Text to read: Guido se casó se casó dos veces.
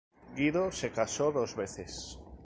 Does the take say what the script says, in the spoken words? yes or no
no